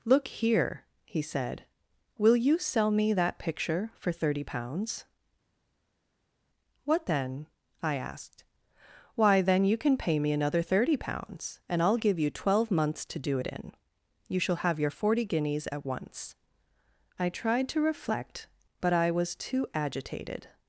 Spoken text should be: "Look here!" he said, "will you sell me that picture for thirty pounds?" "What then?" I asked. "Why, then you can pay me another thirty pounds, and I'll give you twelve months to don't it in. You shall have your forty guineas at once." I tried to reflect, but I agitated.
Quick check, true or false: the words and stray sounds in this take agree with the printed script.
false